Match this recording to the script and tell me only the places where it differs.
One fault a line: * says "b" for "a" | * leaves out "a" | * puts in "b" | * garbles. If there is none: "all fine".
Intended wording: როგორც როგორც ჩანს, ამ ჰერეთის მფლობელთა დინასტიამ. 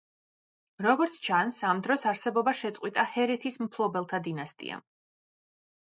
* leaves out "როგორც"
* puts in "დროს არსებობა შეწყვიტა"